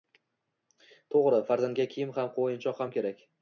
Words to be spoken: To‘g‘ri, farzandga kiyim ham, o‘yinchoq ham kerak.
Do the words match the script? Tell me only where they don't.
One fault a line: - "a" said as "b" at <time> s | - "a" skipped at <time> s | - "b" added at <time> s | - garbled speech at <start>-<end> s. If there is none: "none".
none